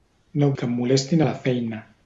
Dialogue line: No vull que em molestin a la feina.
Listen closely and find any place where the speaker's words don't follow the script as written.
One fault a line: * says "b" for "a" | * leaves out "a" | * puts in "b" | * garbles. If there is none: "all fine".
* leaves out "vull"